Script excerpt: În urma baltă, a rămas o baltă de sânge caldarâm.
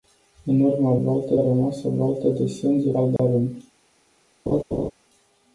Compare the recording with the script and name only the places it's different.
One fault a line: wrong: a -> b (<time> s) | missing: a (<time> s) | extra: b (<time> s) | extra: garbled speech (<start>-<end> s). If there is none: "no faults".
no faults